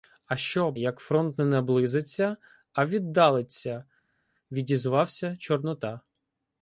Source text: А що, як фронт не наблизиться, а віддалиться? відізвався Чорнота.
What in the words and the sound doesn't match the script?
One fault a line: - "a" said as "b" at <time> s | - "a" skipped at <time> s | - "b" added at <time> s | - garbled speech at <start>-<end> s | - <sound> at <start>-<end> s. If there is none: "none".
none